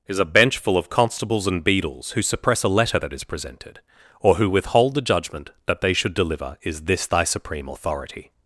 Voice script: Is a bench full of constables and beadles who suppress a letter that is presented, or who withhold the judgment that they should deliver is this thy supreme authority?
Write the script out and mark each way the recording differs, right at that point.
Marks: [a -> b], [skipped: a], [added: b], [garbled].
Is a bench full of constables and beadles who suppress a letter that is presented, or who withhold the judgment that they should deliver is this thy supreme authority?